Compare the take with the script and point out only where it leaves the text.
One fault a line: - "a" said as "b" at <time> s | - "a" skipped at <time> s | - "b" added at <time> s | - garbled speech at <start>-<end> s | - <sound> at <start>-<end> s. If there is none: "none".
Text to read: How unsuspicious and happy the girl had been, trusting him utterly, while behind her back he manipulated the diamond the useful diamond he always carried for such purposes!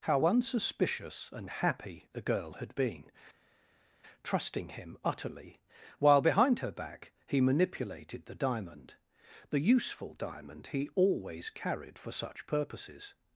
none